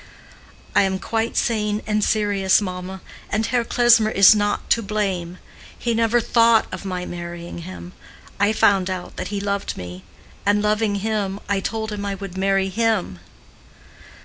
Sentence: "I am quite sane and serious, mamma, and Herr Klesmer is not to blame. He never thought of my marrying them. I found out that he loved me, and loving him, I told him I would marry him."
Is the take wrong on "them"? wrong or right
wrong